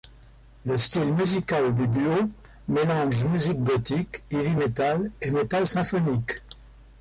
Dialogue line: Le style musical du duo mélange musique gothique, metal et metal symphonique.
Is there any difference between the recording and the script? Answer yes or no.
yes